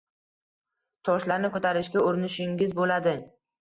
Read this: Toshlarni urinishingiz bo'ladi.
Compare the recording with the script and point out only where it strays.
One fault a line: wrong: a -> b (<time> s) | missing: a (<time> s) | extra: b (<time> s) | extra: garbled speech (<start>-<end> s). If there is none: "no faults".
extra: ko'tarishga (1.6 s)